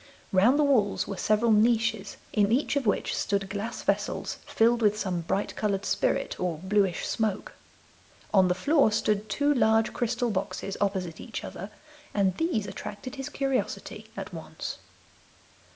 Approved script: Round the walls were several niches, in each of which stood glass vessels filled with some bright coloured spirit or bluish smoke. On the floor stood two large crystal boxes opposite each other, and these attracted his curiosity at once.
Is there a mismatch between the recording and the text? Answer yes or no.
no